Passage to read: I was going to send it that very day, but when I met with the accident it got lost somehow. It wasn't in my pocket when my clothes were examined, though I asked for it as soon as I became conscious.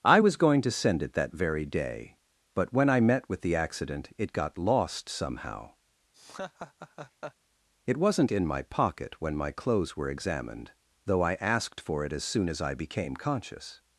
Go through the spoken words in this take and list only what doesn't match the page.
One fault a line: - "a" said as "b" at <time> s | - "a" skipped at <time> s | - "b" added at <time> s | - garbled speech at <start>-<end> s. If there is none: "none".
none